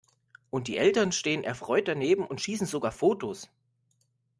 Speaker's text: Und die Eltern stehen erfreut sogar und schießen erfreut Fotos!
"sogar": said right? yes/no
no